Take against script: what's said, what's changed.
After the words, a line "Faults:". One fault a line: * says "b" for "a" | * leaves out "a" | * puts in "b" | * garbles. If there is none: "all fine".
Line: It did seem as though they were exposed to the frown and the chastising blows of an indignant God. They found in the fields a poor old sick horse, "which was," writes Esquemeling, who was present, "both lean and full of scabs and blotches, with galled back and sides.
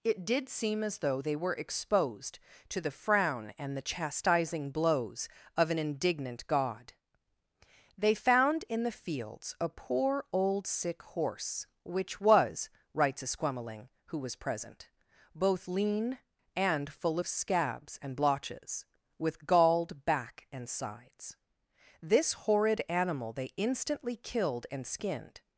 It did seem as though they were exposed to the frown and the chastising blows of an indignant God. They found in the fields a poor old sick horse, "which was," writes Esquemeling, who was present, "both lean and full of scabs and blotches, with galled back and sides. This horrid animal they instantly killed and skinned
Faults:
* puts in "This horrid animal they instantly killed and skinned"